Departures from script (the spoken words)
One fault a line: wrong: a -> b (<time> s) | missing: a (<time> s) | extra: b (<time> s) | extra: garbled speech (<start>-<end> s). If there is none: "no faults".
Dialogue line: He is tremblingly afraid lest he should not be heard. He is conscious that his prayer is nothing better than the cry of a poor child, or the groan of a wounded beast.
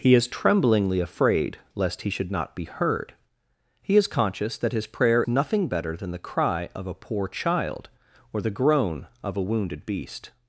missing: is (5.2 s)